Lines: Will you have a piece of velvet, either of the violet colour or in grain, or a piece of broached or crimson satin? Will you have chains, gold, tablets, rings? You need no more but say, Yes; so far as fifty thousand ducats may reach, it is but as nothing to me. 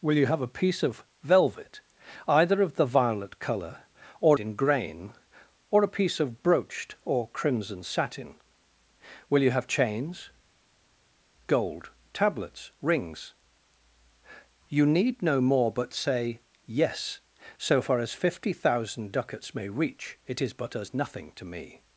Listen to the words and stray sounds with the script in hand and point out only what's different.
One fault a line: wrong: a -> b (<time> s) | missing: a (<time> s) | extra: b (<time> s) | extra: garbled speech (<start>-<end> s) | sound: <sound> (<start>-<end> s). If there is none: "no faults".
no faults